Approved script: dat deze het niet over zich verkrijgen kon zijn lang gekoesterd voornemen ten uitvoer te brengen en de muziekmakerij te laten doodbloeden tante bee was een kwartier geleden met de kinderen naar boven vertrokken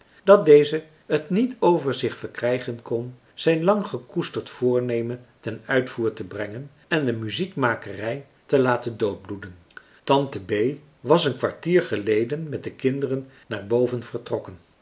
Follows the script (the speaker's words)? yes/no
yes